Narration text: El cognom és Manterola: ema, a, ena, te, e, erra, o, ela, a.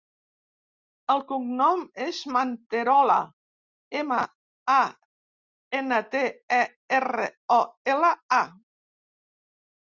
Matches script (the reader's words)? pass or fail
pass